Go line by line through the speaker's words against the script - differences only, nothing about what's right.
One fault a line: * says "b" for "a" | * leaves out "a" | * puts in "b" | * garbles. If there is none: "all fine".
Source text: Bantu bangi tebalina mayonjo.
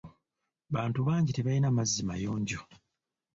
* puts in "mazzi"